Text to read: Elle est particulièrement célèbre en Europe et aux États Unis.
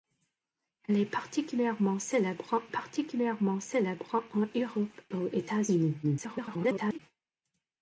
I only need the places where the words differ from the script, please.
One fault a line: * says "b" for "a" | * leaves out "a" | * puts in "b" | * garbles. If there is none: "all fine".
* puts in "particulièrement célèbre"
* leaves out "et"
* garbles